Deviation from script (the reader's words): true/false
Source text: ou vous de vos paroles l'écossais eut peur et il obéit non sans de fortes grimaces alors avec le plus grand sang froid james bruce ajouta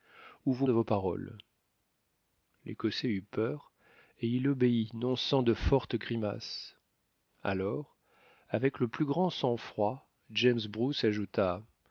false